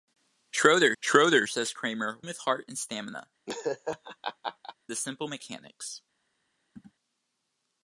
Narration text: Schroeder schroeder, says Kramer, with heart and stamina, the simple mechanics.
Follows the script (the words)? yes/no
yes